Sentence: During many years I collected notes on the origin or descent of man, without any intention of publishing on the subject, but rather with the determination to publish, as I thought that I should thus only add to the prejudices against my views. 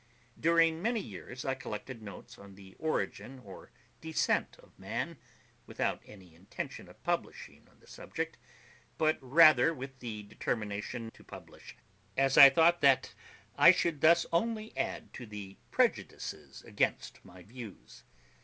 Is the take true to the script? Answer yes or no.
yes